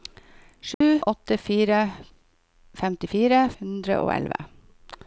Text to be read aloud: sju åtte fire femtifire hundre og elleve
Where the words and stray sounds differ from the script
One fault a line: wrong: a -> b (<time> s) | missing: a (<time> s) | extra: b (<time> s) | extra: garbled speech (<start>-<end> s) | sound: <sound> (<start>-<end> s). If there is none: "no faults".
sound: dropout (0.7-0.8 s)